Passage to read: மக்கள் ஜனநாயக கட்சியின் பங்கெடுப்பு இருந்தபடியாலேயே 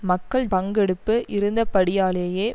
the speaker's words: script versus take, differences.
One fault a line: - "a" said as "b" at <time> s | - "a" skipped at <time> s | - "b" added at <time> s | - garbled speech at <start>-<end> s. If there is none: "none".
- "ஜனநாயக கட்சியின்" skipped at 0.5 s